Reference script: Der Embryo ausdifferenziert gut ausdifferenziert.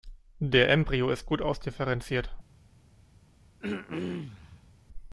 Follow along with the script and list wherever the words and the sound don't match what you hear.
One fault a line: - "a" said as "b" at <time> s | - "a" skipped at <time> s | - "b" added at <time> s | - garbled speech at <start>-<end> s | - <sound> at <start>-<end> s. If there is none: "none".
- "ausdifferenziert" said as "ist" at 1.1 s
- throat clearing at 3.6-4.7 s